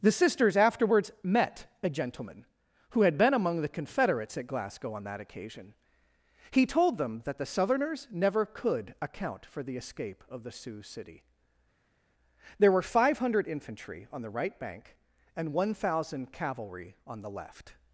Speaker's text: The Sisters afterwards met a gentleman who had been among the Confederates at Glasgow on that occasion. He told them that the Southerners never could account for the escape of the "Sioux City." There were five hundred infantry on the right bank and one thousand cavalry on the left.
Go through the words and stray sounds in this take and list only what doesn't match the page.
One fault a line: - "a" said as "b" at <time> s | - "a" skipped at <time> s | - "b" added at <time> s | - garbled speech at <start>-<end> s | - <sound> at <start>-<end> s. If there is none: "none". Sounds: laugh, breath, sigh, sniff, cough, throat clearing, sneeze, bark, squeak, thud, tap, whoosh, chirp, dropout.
none